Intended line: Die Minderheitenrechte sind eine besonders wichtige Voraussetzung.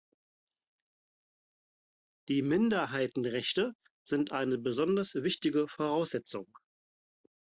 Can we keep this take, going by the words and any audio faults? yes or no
yes